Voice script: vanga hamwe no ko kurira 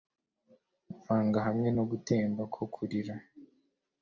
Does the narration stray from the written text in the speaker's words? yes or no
yes